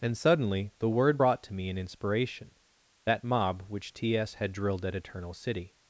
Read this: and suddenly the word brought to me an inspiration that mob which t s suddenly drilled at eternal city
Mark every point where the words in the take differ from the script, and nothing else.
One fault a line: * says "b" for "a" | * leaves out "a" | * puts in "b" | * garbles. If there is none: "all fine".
* says "had" for "suddenly"